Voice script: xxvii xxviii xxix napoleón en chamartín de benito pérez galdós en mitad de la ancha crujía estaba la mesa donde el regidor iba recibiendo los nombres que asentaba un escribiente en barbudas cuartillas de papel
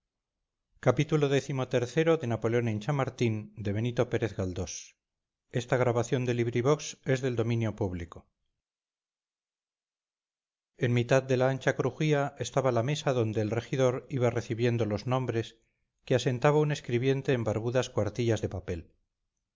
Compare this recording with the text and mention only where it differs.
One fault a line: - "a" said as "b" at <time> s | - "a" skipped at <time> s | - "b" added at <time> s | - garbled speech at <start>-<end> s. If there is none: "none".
none